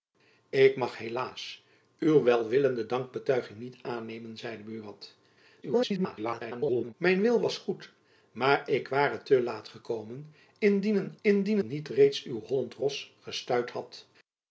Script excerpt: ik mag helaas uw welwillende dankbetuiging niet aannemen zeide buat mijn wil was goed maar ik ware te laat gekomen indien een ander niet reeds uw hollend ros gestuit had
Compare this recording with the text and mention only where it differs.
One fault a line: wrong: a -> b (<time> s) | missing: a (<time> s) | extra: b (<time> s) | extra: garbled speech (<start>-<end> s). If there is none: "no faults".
extra: garbled speech (5.6-6.9 s)
wrong: ander -> indien (11.2 s)